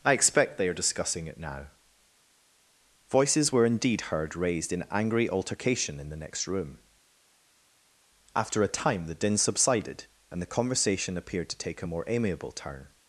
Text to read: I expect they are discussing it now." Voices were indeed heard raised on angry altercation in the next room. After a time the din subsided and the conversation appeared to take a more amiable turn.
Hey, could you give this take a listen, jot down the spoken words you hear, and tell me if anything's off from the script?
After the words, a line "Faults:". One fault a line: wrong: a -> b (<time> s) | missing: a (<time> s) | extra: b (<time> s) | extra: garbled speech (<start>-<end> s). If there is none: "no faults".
I expect they are discussing it now." Voices were indeed heard raised in angry altercation in the next room. After a time the din subsided and the conversation appeared to take a more amiable turn.
Faults:
wrong: on -> in (4.7 s)